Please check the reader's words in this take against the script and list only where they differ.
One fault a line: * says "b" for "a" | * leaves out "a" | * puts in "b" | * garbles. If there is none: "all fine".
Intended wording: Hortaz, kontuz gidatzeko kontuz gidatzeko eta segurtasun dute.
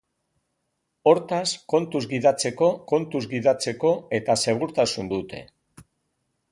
all fine